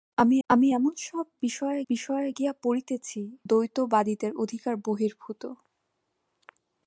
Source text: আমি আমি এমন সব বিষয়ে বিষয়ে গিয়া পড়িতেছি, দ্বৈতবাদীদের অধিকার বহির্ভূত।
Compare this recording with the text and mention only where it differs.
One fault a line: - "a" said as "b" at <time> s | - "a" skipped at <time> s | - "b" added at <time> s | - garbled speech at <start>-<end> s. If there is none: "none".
none